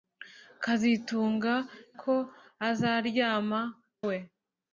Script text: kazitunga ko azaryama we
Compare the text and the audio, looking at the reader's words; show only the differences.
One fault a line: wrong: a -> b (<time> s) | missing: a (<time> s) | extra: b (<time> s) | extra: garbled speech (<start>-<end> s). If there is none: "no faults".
no faults